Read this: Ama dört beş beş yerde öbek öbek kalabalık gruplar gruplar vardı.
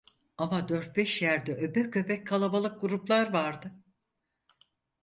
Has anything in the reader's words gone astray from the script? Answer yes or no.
yes